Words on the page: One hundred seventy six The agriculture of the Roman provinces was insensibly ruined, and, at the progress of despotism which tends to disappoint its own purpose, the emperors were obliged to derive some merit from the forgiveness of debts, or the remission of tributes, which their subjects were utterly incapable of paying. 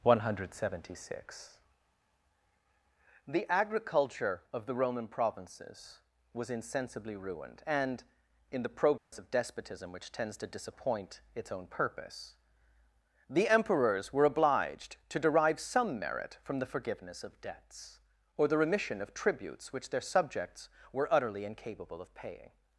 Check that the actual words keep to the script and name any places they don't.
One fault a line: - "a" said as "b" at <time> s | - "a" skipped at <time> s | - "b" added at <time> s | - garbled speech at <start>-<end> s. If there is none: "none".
- "at" said as "in" at 8.5 s